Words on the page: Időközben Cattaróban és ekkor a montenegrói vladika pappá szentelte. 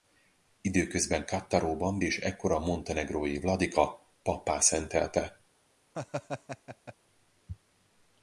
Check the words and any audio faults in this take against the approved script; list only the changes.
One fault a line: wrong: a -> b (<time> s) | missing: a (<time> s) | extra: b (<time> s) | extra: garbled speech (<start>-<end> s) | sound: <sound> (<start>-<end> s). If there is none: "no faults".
sound: laugh (5.9-6.9 s)